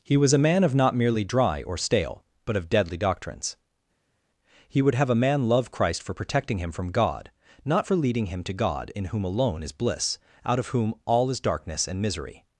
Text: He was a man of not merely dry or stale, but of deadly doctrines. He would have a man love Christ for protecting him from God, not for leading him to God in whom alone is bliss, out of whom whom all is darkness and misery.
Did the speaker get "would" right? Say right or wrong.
right